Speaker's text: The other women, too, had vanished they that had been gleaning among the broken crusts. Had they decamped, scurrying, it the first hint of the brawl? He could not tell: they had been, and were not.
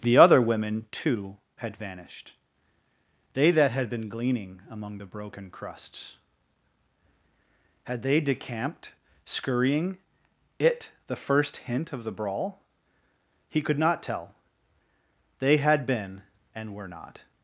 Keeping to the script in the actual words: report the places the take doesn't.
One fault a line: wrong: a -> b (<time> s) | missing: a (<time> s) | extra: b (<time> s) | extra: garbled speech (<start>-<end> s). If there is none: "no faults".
no faults